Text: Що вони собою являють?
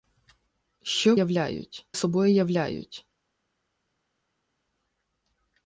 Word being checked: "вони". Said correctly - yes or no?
no